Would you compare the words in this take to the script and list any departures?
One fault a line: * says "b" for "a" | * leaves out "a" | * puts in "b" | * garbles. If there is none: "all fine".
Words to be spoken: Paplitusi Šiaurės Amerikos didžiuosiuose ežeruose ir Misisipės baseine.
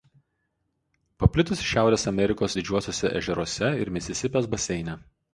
all fine